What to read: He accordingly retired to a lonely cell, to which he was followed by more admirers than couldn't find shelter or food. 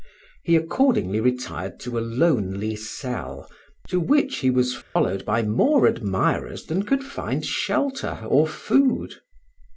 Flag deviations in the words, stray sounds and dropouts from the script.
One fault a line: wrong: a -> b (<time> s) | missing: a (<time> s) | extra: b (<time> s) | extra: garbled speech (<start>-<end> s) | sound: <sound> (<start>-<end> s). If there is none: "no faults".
sound: dropout (4.8-5.0 s)
wrong: couldn't -> could (6.8 s)